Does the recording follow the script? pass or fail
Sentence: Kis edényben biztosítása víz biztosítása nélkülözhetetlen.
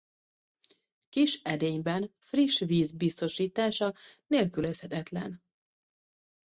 fail